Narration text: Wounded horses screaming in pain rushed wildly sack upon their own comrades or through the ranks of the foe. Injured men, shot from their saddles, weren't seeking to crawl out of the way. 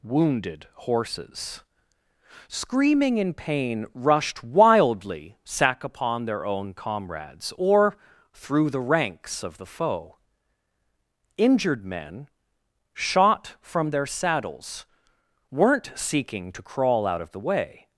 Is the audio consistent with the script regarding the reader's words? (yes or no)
yes